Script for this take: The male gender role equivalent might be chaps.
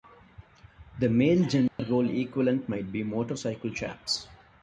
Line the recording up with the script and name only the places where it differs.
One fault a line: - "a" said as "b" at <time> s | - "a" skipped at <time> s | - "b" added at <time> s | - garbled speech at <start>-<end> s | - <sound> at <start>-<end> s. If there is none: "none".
- dropout at 1.7-1.8 s
- "motorcycle" added at 3.0 s